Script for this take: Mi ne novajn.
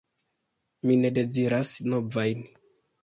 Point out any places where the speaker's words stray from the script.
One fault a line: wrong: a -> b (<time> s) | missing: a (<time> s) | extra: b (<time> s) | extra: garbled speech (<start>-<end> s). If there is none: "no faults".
extra: deziras (1.2 s)